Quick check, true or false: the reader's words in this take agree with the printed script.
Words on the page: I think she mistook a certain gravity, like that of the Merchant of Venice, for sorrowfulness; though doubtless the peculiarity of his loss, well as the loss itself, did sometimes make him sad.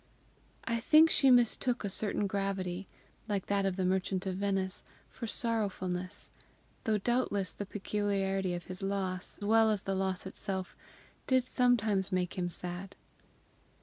true